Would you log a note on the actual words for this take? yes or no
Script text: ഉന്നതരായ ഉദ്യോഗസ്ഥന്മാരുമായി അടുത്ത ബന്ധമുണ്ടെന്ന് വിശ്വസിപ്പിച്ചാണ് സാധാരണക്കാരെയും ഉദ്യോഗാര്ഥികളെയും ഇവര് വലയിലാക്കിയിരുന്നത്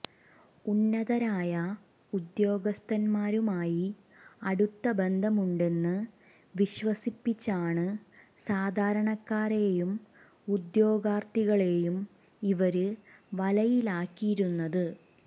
no